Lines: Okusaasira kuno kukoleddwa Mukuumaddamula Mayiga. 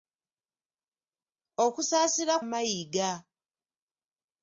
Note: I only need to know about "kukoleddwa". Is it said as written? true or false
false